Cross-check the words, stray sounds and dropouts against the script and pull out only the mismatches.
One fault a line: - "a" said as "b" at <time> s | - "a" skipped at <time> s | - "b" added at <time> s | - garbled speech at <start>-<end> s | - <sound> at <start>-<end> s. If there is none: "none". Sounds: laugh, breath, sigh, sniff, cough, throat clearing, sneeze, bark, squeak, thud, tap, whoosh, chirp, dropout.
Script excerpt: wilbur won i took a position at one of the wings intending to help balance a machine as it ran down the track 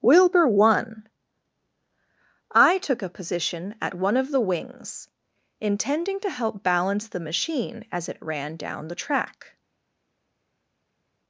- "a" said as "the" at 7.1 s